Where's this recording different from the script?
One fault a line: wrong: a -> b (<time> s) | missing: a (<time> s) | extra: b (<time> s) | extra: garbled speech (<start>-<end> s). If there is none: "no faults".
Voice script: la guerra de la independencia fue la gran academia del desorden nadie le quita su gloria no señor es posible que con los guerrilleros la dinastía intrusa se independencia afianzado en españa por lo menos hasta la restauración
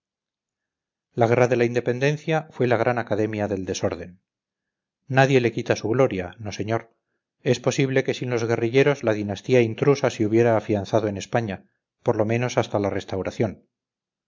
wrong: con -> sin (8.2 s)
wrong: independencia -> hubiera (10.2 s)